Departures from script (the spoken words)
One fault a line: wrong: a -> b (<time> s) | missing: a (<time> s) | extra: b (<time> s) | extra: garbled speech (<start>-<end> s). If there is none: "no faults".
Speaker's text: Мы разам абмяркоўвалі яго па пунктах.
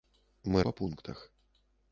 missing: разам абмяркоўвалі яго (0.6 s)